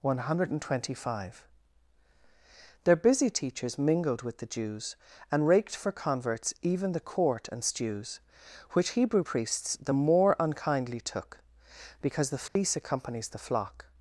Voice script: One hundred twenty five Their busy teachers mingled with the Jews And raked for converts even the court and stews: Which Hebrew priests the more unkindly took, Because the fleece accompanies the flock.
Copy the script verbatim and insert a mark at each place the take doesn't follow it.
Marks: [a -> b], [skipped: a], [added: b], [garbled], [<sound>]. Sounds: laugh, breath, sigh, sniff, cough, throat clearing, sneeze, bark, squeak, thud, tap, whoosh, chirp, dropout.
One hundred twenty five Their busy teachers mingled with the Jews And raked for converts even the court and stews: Which Hebrew priests the more unkindly took, Because the fleece [dropout] accompanies the flock.